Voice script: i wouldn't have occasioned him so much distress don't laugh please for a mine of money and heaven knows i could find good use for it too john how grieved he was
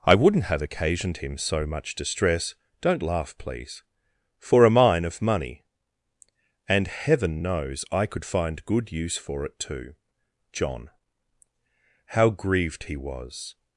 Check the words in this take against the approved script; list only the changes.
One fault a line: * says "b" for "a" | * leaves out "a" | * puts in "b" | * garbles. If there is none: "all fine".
all fine